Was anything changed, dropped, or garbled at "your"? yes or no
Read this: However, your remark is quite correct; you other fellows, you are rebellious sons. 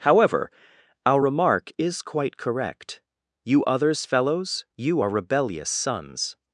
yes